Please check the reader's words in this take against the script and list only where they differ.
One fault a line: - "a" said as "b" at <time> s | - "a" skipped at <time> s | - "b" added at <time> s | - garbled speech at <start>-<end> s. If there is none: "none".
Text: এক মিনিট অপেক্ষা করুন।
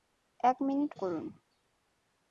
- "অপেক্ষা" skipped at 0.9 s